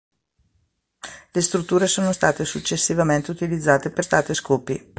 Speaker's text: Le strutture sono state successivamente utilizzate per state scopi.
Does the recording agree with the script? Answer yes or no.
yes